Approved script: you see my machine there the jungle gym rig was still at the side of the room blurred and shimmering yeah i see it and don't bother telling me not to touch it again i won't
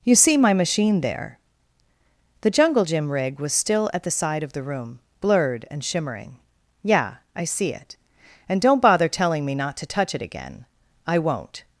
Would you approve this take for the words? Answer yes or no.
yes